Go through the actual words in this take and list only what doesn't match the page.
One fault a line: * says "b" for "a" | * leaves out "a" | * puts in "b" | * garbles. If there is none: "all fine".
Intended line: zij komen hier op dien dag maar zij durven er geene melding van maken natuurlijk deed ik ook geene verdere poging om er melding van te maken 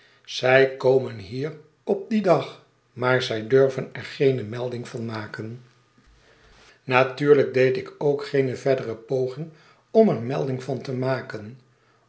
all fine